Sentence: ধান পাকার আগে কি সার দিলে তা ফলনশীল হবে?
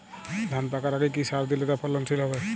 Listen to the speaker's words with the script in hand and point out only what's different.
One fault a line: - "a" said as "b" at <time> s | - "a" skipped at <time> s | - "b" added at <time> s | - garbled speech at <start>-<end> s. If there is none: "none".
none